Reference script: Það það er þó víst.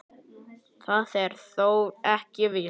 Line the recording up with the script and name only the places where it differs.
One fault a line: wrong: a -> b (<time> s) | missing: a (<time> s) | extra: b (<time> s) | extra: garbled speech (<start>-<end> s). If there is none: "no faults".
missing: það (1.1 s)
extra: ekki (2.2 s)